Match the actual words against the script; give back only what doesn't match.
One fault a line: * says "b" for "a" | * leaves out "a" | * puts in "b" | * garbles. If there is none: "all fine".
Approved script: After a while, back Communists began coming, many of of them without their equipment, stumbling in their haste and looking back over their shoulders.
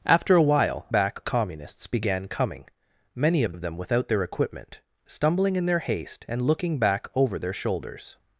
all fine